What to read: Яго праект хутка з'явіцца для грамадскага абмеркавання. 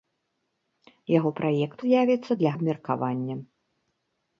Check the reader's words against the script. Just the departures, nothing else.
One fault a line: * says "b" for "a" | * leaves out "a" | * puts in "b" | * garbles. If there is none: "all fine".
* leaves out "хутка"
* leaves out "грамадскага"